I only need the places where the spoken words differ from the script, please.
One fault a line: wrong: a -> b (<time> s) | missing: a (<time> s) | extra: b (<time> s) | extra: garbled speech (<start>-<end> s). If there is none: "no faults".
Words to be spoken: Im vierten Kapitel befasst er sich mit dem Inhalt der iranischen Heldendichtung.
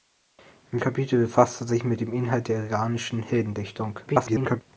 missing: vierten (0.8 s)
extra: garbled speech (4.1-4.6 s)